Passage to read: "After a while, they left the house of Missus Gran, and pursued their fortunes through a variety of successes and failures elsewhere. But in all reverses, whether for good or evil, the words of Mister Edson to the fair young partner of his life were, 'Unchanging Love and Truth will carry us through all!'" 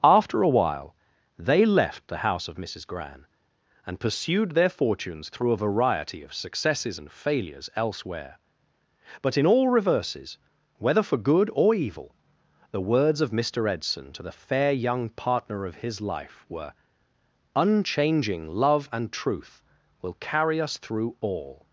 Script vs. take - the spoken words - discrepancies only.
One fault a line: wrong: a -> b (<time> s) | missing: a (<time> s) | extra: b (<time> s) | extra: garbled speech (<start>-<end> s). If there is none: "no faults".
no faults